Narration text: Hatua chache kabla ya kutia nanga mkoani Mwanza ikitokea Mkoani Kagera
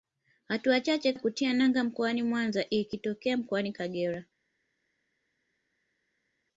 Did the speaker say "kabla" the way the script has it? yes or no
no